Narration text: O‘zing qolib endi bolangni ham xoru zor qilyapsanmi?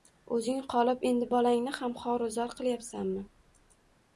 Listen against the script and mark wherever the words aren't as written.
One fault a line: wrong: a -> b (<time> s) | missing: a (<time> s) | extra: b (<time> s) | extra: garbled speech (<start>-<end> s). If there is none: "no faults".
no faults